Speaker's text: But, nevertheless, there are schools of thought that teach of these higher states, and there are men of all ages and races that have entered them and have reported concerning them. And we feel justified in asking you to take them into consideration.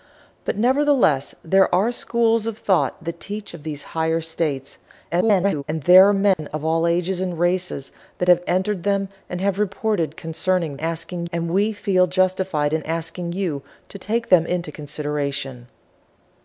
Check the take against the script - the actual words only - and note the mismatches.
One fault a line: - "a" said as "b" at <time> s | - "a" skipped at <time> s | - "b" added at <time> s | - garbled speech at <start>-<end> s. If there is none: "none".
- garbled speech at 5.1-5.6 s
- "them" said as "asking" at 10.8 s